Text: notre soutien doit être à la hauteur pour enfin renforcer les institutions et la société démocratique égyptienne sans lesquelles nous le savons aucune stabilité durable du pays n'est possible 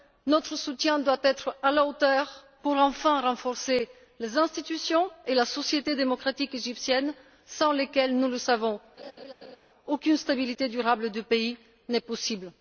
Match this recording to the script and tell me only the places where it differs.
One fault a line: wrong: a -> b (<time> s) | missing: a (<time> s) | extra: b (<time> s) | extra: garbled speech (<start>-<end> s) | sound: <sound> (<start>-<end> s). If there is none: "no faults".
sound: laugh (9.0-9.6 s)